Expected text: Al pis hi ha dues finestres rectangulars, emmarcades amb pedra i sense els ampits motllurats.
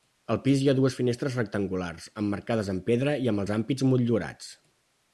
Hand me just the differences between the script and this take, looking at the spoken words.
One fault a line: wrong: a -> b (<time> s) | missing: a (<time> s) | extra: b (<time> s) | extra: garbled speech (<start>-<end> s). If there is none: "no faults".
wrong: sense -> amb (3.3 s)